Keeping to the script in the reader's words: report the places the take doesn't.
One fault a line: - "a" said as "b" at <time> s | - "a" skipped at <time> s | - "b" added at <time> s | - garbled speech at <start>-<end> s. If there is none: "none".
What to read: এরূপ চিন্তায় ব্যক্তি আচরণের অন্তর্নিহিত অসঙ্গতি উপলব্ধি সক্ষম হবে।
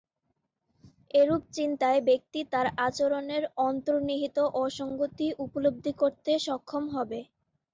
- "তার" added at 2.5 s
- "করতে" added at 6.0 s